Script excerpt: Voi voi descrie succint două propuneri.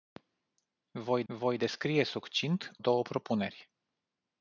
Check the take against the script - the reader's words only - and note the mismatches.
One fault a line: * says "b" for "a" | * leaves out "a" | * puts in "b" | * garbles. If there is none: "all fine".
all fine